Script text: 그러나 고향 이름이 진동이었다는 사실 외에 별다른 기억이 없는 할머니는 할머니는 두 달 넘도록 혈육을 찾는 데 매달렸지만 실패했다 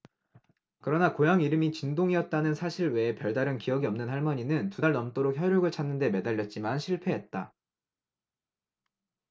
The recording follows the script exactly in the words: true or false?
false